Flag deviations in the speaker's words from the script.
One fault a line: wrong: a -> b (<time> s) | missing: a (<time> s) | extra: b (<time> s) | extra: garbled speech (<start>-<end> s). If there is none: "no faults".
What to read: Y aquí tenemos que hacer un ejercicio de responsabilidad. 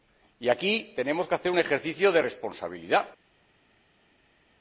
no faults